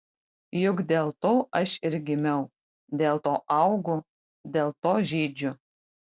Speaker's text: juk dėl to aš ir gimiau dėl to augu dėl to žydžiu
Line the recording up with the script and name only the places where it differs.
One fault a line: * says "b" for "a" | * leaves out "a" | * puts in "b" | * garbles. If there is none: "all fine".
all fine